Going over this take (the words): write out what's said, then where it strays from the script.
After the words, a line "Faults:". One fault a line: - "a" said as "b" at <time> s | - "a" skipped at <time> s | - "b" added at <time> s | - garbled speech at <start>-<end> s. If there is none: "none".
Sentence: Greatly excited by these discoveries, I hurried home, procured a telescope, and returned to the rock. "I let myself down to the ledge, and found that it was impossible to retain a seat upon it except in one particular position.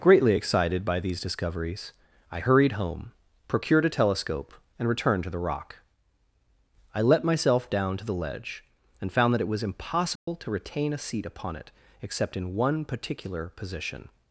Greatly excited by these discoveries, I hurried home, procured a telescope, and returned to the rock. "I let myself down to the ledge, and found that it was impossible to retain a seat upon it except in one particular position.
Faults:
none